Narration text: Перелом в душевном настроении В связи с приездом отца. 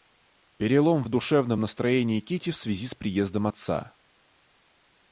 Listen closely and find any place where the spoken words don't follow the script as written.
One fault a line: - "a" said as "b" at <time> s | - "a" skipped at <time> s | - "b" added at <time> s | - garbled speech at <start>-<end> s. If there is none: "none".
- "Кити" added at 2.2 s